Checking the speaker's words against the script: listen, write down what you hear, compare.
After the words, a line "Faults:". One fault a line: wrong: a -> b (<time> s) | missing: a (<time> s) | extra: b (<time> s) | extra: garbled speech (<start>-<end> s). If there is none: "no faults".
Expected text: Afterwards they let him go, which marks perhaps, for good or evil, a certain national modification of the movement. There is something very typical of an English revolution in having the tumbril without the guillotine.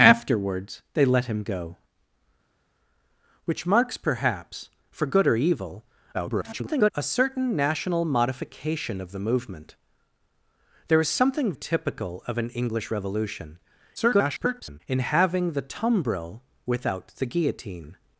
Afterwards they let him go, which marks perhaps, for good or evil, [garbled] a certain national modification of the movement. There is something typical of an English revolution [garbled] in having the tumbril without the guillotine.
Faults:
extra: garbled speech (6.1-6.9 s)
missing: very (11.5 s)
extra: garbled speech (14.0-14.8 s)